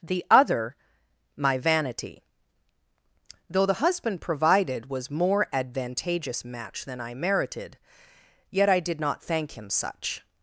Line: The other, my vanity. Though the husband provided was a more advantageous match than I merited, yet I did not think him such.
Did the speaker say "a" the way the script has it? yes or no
no